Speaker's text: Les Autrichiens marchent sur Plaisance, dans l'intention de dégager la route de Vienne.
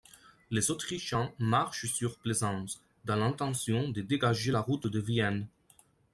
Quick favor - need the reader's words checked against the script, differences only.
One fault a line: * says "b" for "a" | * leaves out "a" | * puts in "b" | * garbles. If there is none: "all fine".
all fine